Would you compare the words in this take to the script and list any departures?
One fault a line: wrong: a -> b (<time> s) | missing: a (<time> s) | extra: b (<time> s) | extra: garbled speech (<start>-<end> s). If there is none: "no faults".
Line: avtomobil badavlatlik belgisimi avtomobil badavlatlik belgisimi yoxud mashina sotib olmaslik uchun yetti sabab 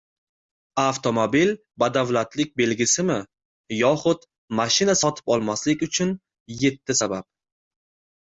missing: avtomobil badavlatlik belgisimi (3.2 s)